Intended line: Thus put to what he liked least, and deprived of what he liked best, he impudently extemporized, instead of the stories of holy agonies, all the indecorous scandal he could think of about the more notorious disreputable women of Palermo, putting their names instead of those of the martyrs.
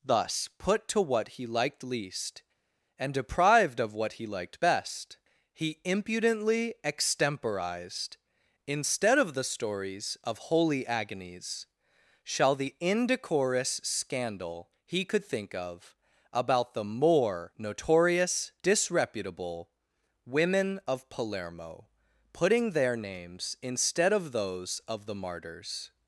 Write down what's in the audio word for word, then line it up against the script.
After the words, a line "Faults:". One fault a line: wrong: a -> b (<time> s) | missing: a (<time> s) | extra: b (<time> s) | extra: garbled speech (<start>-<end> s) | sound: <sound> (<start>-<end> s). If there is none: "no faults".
Thus put to what he liked least, and deprived of what he liked best, he impudently extemporized, instead of the stories of holy agonies, shall the indecorous scandal he could think of about the more notorious disreputable women of Palermo, putting their names instead of those of the martyrs.
Faults:
wrong: all -> shall (12.2 s)